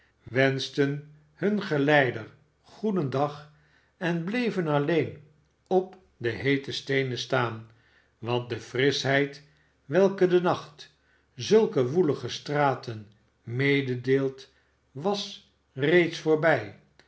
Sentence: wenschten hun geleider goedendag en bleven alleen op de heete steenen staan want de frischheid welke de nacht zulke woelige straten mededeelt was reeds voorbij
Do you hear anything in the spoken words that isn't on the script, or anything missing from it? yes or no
no